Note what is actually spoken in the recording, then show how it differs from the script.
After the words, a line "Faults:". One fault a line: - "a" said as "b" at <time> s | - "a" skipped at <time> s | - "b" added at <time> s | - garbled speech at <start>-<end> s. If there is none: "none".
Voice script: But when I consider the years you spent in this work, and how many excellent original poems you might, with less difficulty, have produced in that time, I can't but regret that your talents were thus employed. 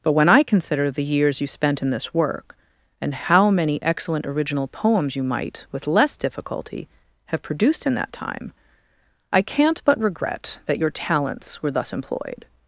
But when I consider the years you spent in this work, and how many excellent original poems you might, with less difficulty, have produced in that time, I can't but regret that your talents were thus employed.
Faults:
none